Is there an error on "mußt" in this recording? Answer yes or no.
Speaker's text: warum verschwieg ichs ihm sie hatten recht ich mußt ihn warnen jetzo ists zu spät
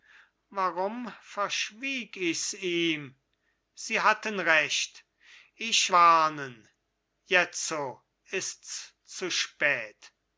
yes